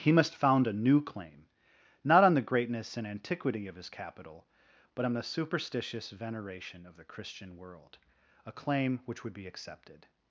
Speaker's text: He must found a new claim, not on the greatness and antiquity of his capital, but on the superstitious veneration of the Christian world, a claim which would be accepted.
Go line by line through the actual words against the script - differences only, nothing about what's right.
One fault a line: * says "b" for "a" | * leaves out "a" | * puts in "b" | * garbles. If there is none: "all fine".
all fine